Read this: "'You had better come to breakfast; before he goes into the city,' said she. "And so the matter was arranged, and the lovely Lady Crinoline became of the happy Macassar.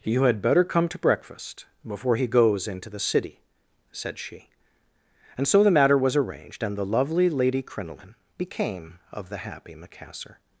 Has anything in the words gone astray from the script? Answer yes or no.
no